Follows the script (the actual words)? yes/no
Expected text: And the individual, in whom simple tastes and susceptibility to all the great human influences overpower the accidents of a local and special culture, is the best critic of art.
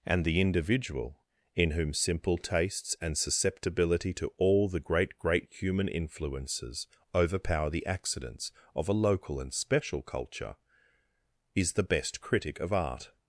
no